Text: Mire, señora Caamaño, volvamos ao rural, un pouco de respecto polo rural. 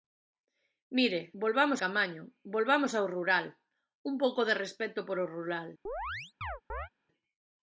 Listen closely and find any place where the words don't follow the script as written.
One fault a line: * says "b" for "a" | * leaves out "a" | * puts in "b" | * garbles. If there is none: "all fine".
* says "volvamos" for "señora"